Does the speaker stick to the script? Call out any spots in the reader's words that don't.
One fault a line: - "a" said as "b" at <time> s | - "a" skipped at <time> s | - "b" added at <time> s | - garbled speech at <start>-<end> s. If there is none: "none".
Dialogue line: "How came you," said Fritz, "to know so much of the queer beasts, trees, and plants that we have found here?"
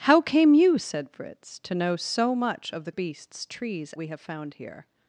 - "queer" skipped at 2.9 s
- "and plants that" skipped at 3.9 s